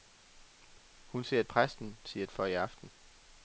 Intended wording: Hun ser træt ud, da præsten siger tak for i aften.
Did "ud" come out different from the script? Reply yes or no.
yes